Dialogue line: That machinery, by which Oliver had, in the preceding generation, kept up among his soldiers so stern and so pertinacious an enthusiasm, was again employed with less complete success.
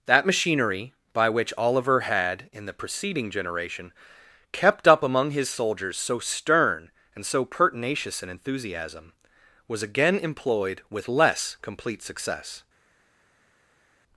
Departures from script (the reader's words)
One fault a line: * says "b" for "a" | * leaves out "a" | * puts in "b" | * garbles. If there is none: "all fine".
all fine